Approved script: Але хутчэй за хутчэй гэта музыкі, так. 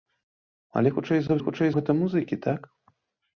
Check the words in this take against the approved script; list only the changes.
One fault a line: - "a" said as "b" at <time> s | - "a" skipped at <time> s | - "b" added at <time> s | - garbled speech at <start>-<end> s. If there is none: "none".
none